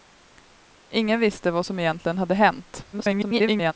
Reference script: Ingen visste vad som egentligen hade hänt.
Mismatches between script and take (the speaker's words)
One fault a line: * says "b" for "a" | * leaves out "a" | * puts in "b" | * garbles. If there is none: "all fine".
* garbles